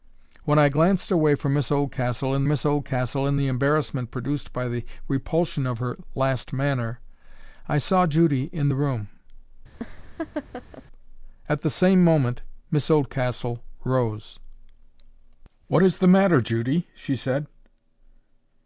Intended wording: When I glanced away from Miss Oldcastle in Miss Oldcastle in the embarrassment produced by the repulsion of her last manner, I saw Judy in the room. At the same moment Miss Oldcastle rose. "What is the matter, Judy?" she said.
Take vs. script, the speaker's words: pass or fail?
pass